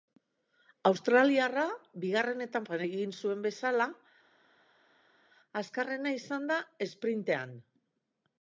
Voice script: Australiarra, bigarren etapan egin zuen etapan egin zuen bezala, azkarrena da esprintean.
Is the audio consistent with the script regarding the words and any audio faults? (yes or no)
no